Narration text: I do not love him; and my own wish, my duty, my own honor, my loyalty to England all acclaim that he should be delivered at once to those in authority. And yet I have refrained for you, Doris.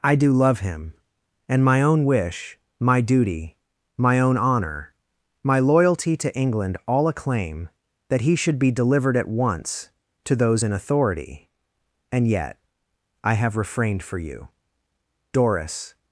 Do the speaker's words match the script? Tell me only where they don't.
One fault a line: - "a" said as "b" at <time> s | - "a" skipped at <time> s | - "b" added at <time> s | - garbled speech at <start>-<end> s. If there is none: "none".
- "not" skipped at 0.3 s